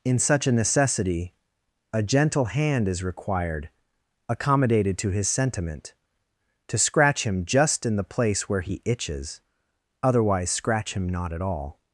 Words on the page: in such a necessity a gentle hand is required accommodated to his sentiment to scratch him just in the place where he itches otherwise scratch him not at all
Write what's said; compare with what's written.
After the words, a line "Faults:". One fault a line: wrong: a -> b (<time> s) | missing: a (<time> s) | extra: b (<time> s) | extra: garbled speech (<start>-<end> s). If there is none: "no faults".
in such a necessity a gentle hand is required accommodated to his sentiment to scratch him just in the place where he itches otherwise scratch him not at all
Faults:
no faults